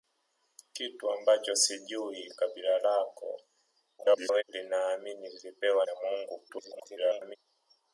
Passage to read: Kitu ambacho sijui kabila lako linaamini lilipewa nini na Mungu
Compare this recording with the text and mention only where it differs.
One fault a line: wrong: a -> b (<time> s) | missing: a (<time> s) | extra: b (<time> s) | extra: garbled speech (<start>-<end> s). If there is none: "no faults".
extra: garbled speech (4.0-4.4 s)
missing: nini (5.8 s)
extra: garbled speech (6.5-7.4 s)